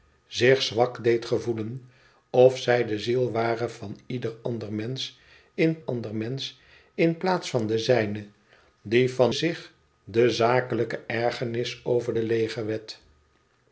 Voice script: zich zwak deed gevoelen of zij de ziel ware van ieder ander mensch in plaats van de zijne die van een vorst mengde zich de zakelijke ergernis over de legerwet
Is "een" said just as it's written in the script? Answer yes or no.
no